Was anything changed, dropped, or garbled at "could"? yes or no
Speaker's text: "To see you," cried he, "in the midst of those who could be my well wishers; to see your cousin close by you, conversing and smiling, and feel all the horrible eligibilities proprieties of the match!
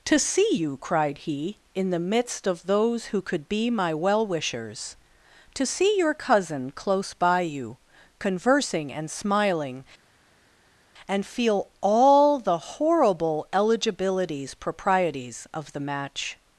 no